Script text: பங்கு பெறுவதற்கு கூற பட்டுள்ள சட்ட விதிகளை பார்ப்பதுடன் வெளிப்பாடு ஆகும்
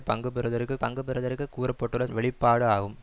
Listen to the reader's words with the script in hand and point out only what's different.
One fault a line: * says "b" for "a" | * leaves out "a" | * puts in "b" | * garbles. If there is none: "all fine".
* puts in "பங்கு பெறுவதற்கு"
* leaves out "சட்ட விதிகளை பார்ப்பதுடன்"